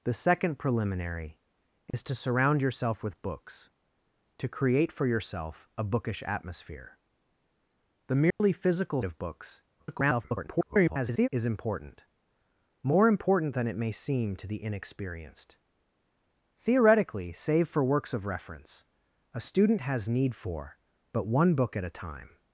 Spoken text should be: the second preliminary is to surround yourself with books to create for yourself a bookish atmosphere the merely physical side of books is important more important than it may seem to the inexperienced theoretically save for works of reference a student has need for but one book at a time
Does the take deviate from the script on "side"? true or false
true